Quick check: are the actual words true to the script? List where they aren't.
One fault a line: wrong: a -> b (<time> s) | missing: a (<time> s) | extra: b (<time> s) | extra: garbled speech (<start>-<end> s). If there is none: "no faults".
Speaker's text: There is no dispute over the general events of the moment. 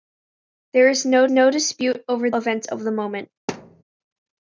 extra: no (1.3 s)
missing: the general (2.3 s)